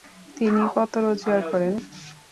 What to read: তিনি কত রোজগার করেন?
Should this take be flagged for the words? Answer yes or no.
no